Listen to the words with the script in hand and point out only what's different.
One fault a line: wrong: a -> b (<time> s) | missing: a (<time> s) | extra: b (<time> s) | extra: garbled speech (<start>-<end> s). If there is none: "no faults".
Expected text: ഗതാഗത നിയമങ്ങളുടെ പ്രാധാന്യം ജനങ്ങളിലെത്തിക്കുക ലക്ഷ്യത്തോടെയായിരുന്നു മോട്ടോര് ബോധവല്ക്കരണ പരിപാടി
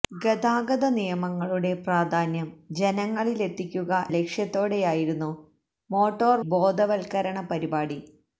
no faults